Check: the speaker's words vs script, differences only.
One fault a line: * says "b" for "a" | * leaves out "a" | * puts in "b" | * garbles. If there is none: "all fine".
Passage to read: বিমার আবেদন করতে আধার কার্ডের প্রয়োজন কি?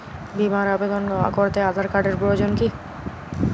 all fine